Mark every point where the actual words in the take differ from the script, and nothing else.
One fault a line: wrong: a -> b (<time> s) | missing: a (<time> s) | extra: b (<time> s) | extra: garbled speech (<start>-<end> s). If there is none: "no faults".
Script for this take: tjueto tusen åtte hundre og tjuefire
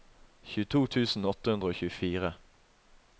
no faults